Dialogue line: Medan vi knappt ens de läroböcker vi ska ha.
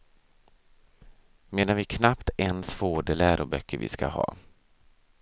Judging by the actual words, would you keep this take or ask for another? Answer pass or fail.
fail